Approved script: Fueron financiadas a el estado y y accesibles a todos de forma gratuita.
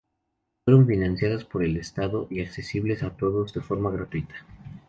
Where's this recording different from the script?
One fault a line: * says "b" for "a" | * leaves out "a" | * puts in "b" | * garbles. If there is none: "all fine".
* says "por" for "a"
* leaves out "y"